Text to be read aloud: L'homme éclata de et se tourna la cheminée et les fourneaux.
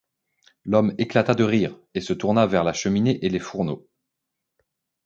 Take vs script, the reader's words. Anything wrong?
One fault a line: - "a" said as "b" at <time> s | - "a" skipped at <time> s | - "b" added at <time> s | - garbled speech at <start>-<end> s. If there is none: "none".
- "rire" added at 1.4 s
- "vers" added at 2.5 s